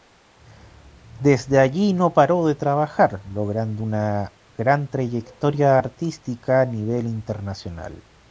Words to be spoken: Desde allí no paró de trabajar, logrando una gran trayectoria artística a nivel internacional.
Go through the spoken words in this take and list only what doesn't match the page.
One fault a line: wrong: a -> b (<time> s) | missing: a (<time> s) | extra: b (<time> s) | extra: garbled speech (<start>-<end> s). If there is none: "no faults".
no faults